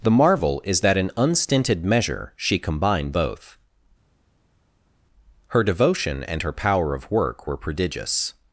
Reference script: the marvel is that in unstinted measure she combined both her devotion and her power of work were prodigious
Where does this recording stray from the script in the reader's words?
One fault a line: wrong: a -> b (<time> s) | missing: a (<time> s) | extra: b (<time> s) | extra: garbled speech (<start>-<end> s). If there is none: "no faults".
no faults